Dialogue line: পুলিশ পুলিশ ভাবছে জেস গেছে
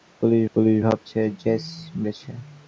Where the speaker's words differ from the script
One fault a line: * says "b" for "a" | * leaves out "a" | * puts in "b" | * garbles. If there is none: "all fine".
all fine